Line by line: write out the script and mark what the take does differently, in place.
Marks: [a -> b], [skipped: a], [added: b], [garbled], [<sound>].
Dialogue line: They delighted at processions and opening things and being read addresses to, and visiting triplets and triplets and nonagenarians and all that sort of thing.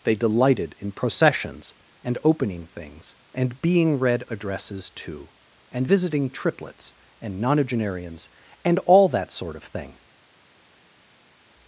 They delighted [at -> in] processions and opening things and being read addresses to, and visiting triplets and [skipped: triplets and] nonagenarians and all that sort of thing.